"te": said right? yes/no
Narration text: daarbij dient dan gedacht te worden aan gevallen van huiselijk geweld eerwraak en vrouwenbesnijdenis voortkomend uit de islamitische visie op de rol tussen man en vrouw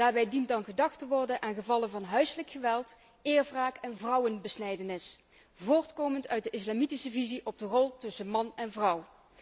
yes